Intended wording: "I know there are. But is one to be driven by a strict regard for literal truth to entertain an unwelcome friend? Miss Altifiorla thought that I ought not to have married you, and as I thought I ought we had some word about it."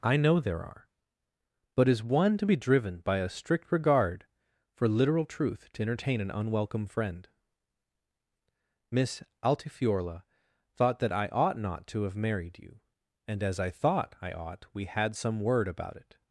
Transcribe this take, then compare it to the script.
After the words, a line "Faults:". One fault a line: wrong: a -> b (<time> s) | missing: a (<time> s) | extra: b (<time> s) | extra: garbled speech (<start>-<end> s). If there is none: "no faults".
"I know there are. But is one to be driven by a strict regard for literal truth to entertain an unwelcome friend? Miss Altifiorla thought that I ought not to have married you, and as I thought I ought we had some word about it."
Faults:
no faults